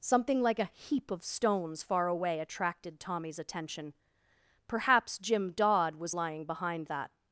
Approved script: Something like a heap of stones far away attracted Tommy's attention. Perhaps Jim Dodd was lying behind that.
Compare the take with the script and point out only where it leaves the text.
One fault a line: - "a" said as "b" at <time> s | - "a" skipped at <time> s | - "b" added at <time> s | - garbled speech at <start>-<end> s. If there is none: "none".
none